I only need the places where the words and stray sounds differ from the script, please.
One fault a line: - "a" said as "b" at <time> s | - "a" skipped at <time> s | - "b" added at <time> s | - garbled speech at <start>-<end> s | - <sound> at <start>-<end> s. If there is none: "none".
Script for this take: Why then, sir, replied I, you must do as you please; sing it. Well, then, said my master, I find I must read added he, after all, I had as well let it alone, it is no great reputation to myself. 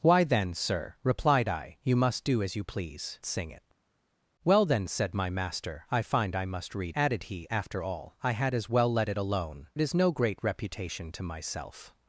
none